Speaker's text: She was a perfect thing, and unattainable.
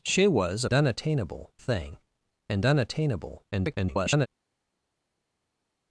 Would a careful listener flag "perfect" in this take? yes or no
yes